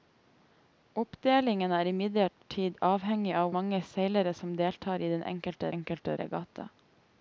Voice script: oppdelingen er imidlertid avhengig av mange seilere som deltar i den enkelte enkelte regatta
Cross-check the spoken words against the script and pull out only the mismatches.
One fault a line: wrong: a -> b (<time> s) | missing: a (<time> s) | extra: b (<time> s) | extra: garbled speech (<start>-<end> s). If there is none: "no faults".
no faults